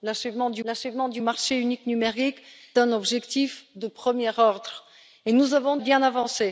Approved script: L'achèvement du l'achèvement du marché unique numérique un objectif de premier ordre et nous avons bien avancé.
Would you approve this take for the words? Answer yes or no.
yes